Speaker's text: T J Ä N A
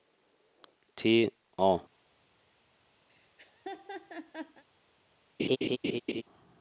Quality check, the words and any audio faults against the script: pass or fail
fail